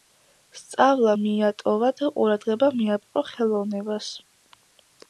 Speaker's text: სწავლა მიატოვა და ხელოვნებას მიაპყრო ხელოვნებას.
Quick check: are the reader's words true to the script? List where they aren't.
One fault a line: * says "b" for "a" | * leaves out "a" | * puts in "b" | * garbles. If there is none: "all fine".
* says "ყურადღება" for "ხელოვნებას"